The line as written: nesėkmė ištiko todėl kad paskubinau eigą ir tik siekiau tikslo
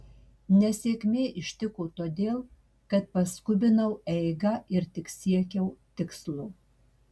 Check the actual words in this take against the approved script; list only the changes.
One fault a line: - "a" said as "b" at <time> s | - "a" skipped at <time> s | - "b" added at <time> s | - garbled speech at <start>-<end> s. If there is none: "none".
none